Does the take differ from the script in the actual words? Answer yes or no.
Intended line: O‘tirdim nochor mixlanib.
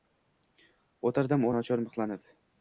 no